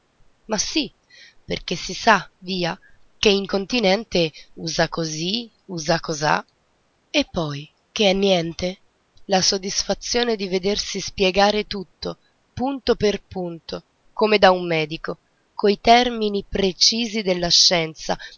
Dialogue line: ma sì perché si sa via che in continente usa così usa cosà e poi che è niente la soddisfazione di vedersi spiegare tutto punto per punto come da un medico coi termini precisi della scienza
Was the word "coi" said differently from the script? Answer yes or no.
no